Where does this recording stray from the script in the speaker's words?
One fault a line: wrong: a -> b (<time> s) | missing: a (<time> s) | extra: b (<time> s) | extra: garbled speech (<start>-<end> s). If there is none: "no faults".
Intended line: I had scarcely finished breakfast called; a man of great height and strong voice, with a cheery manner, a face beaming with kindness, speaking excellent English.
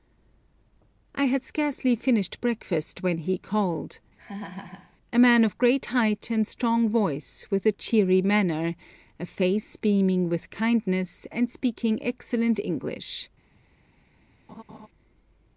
extra: when he (3.0 s)
extra: and (11.3 s)